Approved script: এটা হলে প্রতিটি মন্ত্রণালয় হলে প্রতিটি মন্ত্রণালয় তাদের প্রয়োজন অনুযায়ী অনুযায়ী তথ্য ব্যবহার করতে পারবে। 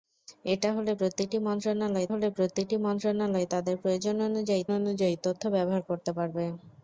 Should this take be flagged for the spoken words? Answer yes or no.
no